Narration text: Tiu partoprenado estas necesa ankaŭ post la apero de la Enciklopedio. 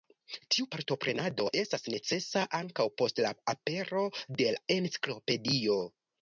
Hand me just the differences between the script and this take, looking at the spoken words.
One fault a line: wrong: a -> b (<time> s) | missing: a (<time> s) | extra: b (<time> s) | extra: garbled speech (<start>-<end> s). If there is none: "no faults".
no faults